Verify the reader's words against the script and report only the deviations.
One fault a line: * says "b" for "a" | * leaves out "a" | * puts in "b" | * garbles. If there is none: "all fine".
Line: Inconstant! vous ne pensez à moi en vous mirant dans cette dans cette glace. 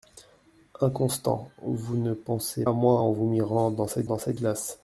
all fine